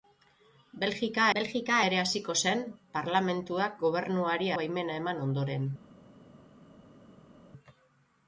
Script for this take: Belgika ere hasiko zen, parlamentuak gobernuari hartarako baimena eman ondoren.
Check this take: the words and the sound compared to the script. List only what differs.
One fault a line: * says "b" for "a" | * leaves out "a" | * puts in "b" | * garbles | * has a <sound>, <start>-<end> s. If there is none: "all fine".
* puts in "belgika"
* leaves out "hartarako"